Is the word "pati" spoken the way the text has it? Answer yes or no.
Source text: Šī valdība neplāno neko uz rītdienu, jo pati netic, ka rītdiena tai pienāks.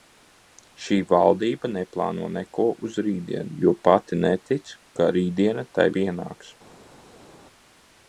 yes